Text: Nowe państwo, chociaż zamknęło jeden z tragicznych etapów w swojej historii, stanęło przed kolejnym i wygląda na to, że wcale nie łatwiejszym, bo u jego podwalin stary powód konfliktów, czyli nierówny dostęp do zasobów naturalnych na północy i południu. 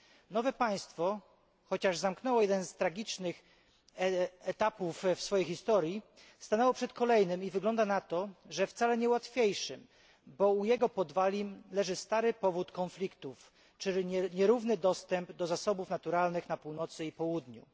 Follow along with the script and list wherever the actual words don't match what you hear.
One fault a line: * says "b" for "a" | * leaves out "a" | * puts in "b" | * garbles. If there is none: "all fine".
* puts in "leży"